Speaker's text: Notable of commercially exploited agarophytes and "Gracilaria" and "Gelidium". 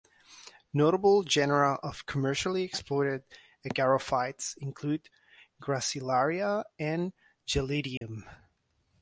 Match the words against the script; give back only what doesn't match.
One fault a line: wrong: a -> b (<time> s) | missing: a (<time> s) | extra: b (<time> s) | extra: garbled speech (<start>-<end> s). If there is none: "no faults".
extra: genera (1.2 s)
wrong: and -> include (4.6 s)